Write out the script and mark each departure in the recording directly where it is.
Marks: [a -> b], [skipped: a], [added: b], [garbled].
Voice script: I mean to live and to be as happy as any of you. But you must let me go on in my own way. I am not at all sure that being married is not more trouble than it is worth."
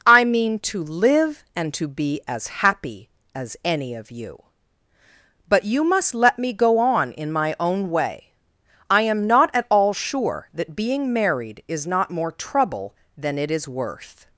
I mean to live and to be as happy as any of you. But you must let me go on in my own way. I am not at all sure that being married is not more trouble than it is worth."